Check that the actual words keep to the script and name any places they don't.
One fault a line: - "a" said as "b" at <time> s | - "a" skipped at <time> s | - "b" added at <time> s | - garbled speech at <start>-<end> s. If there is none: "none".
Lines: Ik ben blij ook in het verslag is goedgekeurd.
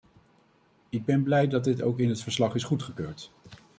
- "dat dit" added at 1.5 s